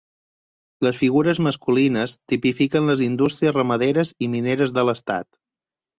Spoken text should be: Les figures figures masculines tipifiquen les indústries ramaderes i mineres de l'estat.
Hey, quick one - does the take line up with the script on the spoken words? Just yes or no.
no